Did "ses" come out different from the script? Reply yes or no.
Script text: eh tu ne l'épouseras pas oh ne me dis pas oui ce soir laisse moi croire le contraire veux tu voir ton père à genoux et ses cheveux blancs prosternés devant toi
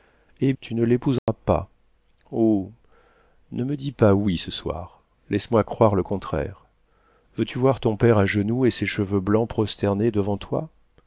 no